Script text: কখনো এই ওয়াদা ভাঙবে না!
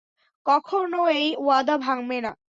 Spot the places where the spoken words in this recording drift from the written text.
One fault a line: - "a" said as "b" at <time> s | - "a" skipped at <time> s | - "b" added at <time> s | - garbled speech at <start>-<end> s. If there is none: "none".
none